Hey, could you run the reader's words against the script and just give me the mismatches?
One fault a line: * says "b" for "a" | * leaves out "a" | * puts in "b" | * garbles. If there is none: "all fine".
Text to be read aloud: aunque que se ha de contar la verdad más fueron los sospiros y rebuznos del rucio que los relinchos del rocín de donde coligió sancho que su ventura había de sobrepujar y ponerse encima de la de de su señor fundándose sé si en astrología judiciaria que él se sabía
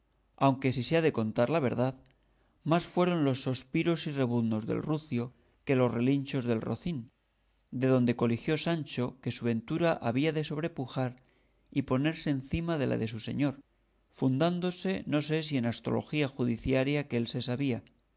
* says "si" for "que"
* leaves out "de"
* puts in "no"